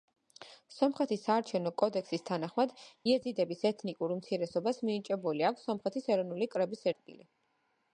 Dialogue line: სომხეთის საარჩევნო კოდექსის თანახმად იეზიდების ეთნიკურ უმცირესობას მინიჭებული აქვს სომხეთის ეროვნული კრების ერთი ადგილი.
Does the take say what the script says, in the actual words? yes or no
no